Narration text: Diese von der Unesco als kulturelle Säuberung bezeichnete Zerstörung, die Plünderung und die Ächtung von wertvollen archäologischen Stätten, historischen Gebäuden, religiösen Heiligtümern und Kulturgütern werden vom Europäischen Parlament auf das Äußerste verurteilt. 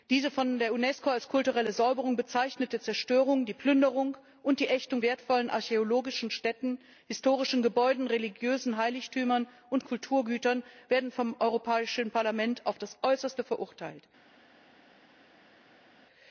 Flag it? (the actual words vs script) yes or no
yes